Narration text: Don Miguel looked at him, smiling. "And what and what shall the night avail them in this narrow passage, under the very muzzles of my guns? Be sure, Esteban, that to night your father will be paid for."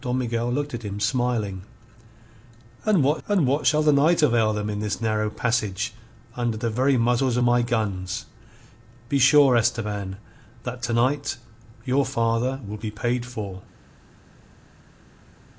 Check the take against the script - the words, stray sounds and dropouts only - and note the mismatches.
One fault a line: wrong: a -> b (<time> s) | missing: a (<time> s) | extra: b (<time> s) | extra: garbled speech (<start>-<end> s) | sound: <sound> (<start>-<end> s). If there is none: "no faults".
no faults